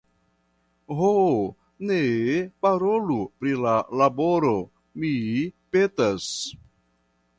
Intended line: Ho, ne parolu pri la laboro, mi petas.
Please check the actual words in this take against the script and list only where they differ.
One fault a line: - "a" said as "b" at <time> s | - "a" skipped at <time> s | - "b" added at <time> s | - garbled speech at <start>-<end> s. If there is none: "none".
none